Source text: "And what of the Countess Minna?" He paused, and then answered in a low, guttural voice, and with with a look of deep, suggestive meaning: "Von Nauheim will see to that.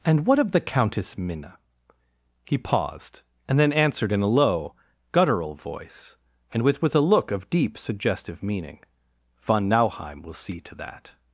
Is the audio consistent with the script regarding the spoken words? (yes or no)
yes